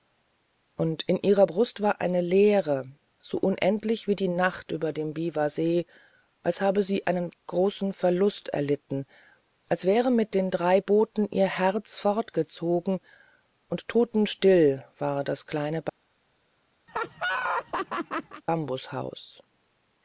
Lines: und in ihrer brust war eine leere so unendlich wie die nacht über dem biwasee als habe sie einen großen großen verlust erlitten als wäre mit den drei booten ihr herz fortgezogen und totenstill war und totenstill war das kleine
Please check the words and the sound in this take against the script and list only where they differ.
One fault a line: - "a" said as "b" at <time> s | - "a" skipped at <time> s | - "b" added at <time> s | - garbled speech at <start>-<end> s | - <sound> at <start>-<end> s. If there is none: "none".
- "großen" skipped at 7.9 s
- "und totenstill war" skipped at 15.2 s
- laugh at 16.9-18.4 s